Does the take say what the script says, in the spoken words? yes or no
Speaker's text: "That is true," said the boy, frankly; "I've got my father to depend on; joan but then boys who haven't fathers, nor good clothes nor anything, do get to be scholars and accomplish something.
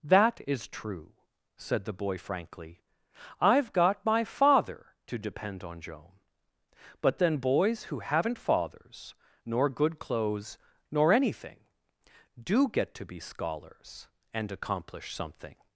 yes